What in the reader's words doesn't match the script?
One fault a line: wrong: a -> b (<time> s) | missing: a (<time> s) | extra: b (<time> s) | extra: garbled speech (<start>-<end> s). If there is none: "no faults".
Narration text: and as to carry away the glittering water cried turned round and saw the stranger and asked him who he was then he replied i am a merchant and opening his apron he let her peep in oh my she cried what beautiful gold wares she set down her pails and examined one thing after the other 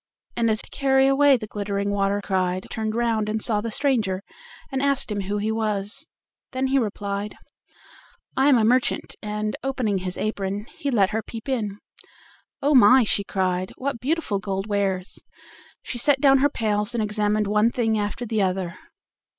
no faults